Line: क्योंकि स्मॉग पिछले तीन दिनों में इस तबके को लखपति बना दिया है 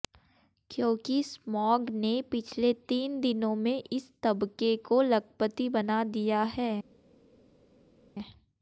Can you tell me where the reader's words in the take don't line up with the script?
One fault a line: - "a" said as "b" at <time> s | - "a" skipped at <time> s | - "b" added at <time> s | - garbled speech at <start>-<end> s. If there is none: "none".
- "ने" added at 1.9 s